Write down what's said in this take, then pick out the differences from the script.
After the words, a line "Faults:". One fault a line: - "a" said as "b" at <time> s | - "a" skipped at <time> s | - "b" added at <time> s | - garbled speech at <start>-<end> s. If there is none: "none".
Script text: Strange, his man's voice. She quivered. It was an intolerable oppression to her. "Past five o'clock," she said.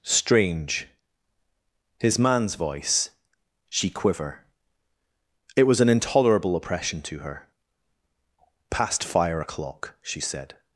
Strange, his man's voice. She quiver. It was an intolerable oppression to her. "Past fire o'clock," she said.
Faults:
- "quivered" said as "quiver" at 3.9 s
- "five" said as "fire" at 9.0 s